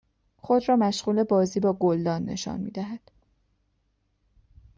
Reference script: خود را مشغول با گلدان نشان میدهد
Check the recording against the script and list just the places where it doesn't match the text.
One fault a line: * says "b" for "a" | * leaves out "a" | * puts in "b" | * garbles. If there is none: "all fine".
* puts in "بازی"